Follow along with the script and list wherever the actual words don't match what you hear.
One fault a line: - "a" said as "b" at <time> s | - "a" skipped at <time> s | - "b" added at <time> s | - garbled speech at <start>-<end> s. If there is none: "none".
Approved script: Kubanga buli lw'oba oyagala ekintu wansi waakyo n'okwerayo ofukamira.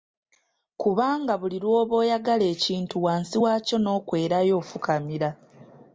none